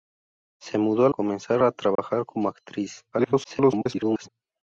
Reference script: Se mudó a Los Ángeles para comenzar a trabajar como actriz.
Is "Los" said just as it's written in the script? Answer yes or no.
no